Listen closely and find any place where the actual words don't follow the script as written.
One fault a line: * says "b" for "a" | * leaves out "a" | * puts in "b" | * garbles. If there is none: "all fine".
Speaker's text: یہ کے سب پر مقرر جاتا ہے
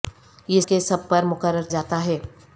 all fine